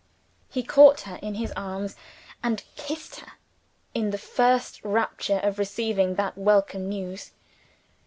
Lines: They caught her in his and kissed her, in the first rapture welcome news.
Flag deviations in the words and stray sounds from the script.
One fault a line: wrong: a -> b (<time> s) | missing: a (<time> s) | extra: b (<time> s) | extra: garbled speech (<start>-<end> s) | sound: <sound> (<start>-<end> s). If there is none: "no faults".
wrong: They -> He (0.5 s)
extra: arms (1.5 s)
extra: of receiving that (5.4 s)